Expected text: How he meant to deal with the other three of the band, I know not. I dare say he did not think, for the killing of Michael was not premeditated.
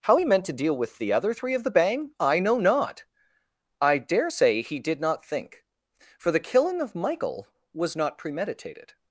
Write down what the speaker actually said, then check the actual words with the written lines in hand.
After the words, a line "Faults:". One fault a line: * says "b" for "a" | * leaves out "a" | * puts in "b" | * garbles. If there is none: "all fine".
How he meant to deal with the other three of the bang, I know not. I dare say he did not think, for the killing of Michael was not premeditated.
Faults:
* says "bang" for "band"